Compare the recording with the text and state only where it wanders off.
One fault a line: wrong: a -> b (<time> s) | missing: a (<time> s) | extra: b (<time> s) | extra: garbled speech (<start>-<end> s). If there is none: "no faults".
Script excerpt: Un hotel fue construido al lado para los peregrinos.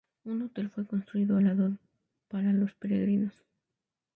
no faults